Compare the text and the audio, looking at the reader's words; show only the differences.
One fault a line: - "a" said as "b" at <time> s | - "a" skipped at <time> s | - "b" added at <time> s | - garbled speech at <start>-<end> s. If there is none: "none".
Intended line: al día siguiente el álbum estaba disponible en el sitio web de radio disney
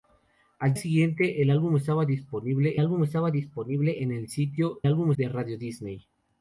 - "día" skipped at 0.7 s
- "álbum estaba disponible" added at 2.8 s
- "web" said as "álbum" at 4.9 s